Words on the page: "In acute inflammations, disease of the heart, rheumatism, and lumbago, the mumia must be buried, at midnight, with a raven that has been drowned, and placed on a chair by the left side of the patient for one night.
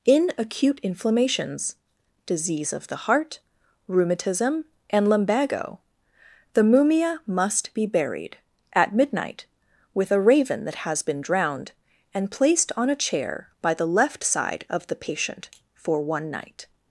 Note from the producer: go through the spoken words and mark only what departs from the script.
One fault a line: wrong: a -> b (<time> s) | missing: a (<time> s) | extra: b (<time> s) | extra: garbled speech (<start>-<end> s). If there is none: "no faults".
no faults